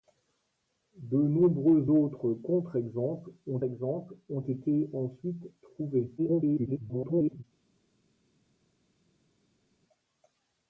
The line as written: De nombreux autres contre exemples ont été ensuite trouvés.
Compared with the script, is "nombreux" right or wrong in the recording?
right